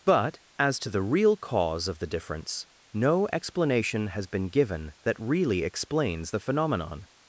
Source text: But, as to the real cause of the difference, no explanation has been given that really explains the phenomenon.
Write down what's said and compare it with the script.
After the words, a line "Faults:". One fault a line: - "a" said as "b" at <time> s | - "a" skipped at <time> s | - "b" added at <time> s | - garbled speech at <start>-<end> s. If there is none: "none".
But, as to the real cause of the difference, no explanation has been given that really explains the phenomenon.
Faults:
none